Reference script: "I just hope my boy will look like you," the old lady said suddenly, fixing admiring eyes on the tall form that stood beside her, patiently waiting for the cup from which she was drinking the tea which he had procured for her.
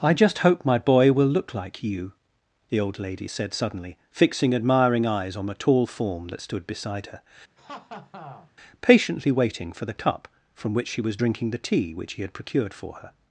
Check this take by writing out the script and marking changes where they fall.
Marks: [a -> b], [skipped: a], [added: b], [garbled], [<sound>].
"I just hope my boy will look like you," the old lady said suddenly, fixing admiring eyes on the tall form that stood beside her, [laugh] patiently waiting for the cup from which she was drinking the tea which he had procured for her.